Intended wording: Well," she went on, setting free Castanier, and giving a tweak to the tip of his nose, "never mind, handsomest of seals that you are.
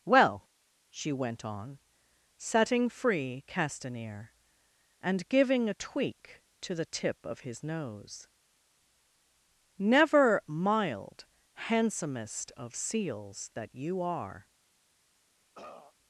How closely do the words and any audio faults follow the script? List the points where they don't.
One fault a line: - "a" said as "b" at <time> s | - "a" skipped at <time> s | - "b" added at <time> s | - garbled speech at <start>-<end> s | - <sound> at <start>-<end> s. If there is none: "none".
- "mind" said as "mild" at 10.5 s
- throat clearing at 15.5-15.9 s